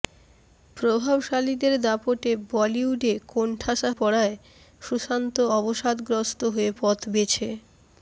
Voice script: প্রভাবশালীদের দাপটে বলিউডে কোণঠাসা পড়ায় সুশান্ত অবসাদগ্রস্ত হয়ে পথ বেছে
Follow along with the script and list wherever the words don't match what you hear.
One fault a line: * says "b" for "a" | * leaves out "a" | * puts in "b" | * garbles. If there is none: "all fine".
all fine